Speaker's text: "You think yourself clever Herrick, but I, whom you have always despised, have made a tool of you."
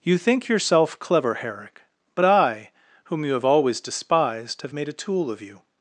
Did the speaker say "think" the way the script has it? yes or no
yes